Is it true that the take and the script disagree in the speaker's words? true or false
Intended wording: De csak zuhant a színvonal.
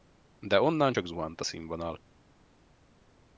true